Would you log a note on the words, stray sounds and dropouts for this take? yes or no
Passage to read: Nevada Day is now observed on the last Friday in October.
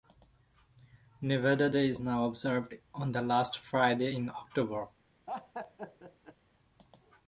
yes